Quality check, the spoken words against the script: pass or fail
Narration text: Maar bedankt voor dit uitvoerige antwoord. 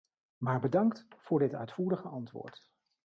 pass